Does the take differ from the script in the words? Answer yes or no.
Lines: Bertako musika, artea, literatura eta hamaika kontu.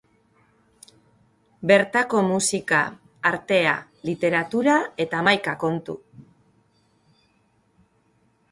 no